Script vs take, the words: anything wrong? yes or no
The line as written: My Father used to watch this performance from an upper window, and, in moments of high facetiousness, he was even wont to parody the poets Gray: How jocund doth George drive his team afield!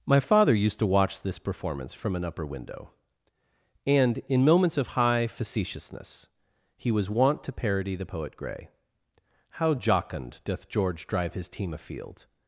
yes